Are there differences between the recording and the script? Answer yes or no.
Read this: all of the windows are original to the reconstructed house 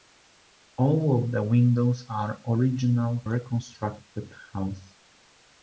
yes